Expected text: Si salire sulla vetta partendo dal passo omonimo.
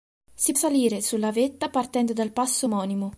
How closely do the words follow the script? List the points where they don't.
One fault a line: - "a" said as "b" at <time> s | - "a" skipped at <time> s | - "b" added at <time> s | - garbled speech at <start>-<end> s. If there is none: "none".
none